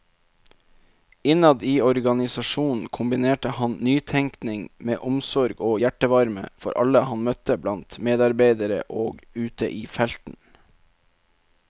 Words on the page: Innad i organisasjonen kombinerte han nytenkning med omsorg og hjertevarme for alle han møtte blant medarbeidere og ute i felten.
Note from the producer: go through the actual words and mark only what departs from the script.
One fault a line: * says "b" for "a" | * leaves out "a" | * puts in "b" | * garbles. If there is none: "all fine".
all fine